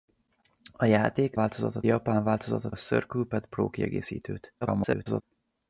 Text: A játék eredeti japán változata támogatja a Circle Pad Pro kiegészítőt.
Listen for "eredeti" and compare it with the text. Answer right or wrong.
wrong